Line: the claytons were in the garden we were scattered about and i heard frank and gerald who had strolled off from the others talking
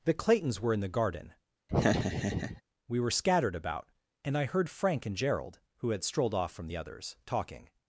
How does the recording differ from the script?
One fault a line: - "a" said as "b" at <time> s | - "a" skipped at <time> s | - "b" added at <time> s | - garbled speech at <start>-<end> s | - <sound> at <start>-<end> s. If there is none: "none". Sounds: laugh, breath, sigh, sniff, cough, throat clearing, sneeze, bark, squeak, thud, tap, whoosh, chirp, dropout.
- laugh at 1.7-2.6 s